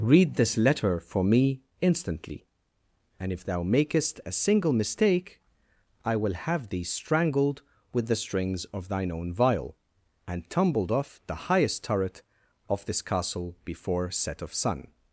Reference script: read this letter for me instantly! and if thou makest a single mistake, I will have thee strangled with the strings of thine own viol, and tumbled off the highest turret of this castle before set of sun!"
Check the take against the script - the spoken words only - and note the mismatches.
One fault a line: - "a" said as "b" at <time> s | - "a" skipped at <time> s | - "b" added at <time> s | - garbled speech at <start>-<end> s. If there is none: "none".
none